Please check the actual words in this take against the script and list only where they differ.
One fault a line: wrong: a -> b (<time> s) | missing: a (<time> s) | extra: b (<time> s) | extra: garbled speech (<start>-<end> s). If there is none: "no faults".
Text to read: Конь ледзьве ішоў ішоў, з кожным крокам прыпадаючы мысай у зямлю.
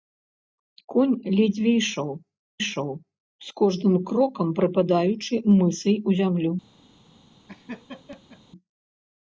no faults